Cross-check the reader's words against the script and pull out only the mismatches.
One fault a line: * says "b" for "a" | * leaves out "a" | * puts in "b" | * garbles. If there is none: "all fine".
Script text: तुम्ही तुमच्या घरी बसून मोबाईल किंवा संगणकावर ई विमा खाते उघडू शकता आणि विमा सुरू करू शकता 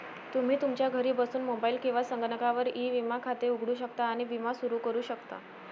all fine